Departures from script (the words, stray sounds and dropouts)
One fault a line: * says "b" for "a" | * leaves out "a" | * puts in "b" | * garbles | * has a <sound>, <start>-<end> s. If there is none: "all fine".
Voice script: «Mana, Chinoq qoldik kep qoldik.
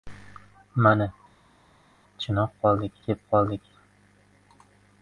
all fine